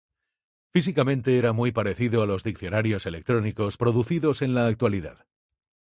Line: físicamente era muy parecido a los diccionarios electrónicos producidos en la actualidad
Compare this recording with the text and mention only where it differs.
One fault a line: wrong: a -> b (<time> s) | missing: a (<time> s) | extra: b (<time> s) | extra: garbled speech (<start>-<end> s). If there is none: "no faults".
no faults